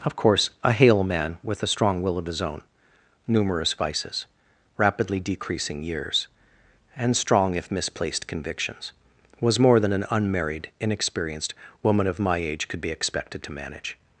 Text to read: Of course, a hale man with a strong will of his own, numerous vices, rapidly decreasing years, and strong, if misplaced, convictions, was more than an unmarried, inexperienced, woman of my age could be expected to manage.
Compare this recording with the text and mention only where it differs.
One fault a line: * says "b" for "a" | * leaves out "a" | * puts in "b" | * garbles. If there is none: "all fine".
all fine